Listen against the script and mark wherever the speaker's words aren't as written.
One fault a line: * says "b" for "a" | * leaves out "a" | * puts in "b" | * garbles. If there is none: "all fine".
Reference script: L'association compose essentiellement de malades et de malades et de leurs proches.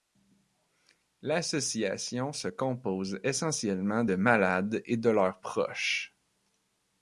* puts in "se"
* leaves out "malades et de"